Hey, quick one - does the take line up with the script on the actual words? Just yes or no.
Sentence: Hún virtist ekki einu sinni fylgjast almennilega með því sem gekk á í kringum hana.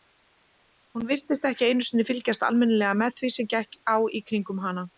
yes